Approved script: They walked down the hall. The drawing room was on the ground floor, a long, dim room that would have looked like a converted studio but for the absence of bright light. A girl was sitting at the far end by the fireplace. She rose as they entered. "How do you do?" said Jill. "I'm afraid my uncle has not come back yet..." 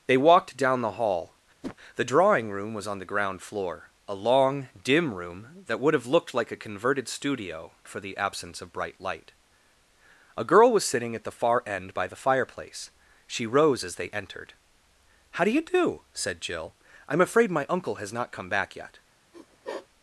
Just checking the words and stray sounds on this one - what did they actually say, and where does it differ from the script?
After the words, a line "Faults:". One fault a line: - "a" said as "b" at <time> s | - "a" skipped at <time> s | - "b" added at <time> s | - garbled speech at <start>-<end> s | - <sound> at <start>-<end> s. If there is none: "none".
They walked down the hall. The drawing room was on the ground floor, a long, dim room that would have looked like a converted studio for the absence of bright light. A girl was sitting at the far end by the fireplace. She rose as they entered. "How do you do?" said Jill. "I'm afraid my uncle has not come back yet..."
Faults:
- whoosh at 1.6-1.8 s
- "but" skipped at 7.7 s
- sniff at 19.3-19.9 s